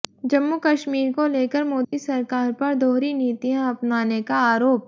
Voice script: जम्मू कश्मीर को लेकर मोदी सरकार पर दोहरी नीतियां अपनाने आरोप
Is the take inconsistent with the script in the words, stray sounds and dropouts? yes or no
yes